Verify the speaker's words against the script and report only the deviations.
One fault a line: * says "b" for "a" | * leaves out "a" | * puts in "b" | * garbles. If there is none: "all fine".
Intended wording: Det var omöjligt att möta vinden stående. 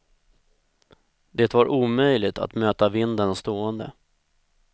all fine